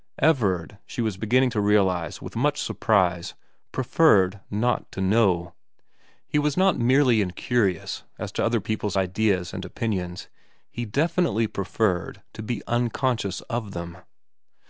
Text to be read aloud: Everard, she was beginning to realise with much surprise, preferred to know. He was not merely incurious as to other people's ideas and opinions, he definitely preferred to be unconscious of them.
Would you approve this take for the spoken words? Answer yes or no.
no